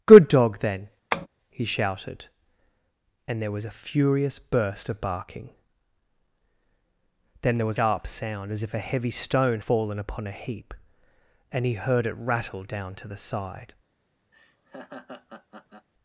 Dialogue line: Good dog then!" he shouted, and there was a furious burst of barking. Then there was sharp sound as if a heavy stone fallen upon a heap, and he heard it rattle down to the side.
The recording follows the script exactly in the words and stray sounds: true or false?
false